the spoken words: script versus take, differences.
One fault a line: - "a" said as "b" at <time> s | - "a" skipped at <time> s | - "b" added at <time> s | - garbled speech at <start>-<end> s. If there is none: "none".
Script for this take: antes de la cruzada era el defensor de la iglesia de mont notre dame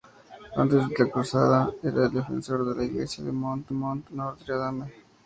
- "mont" added at 3.7 s